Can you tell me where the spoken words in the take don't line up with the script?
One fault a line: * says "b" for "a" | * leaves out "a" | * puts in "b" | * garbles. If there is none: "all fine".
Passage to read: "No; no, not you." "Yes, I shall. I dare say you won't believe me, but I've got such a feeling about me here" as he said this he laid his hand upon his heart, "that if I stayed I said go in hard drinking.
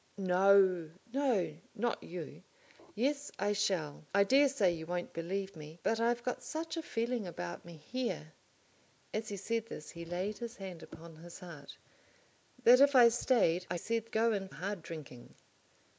all fine